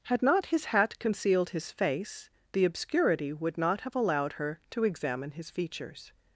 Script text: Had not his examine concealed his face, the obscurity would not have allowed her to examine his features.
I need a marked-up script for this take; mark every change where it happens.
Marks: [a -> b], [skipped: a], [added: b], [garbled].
Had not his [examine -> hat] concealed his face, the obscurity would not have allowed her to examine his features.